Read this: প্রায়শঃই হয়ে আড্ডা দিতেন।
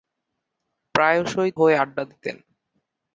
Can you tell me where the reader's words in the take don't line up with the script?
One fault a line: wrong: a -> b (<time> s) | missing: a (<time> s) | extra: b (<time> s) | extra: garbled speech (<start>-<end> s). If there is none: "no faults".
no faults